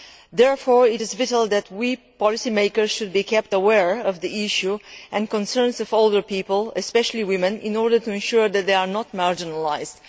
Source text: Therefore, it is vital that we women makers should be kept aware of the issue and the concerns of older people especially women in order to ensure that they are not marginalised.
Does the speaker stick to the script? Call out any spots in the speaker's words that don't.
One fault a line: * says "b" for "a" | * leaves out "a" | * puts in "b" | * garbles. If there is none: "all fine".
* says "policy" for "women"